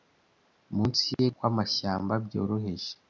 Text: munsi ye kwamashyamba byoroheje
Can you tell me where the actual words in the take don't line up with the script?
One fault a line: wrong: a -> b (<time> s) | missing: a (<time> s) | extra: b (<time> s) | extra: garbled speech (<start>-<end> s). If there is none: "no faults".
no faults